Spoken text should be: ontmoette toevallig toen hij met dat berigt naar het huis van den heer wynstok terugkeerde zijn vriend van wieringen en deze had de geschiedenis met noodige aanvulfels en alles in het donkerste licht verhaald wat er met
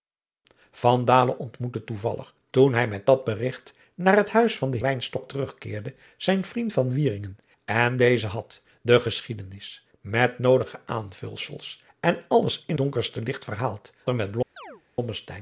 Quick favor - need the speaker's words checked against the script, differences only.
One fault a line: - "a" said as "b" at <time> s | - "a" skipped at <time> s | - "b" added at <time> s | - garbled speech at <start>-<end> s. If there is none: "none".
- "heer" skipped at 4.8 s
- "het" skipped at 12.8 s
- "wat" skipped at 13.9 s